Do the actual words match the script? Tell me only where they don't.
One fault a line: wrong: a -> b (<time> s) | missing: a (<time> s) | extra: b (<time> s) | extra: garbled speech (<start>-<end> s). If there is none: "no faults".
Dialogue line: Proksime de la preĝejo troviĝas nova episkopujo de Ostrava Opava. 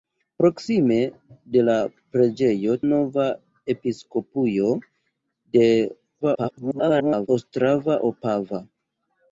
missing: troviĝas (2.8 s)
extra: garbled speech (6.2-7.3 s)